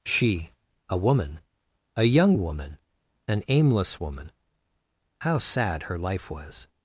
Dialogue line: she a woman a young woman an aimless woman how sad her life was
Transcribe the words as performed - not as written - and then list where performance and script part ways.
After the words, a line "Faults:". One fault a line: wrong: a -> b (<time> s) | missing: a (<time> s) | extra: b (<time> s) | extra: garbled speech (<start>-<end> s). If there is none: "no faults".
she a woman a young woman an aimless woman how sad her life was
Faults:
no faults